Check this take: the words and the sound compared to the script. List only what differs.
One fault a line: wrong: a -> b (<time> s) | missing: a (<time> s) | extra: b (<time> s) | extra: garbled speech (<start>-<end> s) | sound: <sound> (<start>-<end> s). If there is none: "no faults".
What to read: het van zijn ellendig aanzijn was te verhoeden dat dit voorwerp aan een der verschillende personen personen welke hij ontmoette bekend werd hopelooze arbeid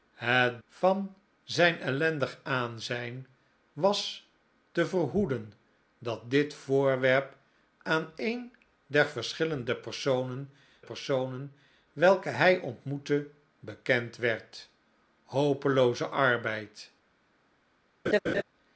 sound: laugh (18.1-18.4 s)